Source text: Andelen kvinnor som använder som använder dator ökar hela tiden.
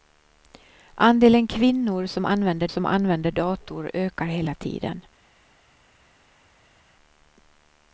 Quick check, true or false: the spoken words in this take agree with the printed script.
true